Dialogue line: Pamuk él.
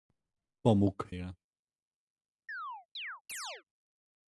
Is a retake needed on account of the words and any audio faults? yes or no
yes